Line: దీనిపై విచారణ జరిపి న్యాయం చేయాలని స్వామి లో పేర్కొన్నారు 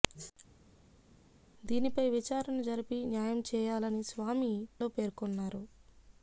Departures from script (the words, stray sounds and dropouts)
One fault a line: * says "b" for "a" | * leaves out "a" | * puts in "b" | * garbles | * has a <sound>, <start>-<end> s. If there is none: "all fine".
all fine